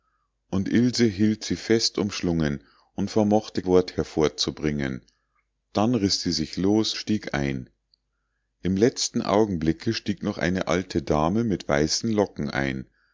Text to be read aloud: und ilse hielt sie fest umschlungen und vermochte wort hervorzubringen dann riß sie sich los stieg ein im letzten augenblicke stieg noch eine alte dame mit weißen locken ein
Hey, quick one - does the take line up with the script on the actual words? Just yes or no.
yes